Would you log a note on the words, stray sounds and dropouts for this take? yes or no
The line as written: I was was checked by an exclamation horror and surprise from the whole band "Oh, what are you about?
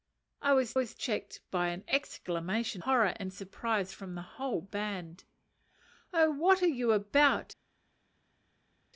no